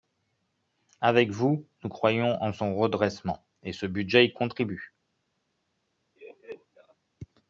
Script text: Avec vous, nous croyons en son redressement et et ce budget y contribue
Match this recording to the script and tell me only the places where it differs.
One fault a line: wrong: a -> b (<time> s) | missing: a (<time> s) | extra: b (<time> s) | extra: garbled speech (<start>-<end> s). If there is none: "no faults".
missing: et (3.7 s)